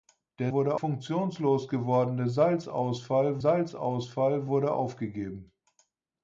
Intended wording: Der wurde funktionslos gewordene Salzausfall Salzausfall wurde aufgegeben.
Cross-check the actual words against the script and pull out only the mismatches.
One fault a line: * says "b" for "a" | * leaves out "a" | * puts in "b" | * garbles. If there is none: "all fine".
all fine